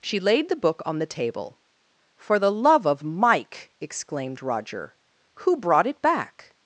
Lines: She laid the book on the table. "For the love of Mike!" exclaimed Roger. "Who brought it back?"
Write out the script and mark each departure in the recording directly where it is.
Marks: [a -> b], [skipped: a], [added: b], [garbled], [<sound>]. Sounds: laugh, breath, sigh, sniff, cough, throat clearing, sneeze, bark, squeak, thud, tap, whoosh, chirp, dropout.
She laid the book on the table. "For the love of Mike!" exclaimed Roger. "Who brought it back?"